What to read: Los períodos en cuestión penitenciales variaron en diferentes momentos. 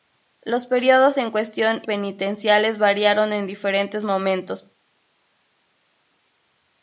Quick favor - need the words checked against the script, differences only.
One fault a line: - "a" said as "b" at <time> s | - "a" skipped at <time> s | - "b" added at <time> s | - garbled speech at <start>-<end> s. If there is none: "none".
none